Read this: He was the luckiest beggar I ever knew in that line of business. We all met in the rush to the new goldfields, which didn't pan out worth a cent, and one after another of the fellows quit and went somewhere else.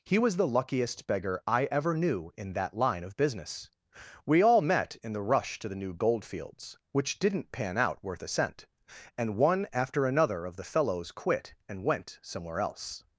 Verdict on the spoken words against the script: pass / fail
pass